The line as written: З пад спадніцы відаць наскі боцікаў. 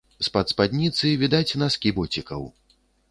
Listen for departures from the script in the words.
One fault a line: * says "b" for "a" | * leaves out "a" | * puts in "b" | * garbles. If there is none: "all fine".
all fine